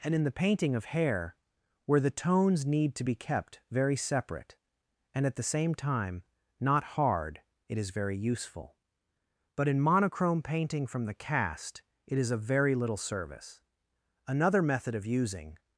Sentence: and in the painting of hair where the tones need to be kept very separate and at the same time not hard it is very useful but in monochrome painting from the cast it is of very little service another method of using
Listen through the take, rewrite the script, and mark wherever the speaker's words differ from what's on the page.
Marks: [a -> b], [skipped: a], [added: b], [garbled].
and in the painting of hair where the tones need to be kept very separate and at the same time not hard it is very useful but in monochrome painting from the cast it is of very little service another method of using